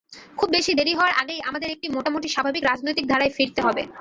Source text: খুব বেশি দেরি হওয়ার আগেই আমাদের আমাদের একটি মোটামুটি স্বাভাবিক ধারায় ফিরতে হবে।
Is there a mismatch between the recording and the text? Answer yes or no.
yes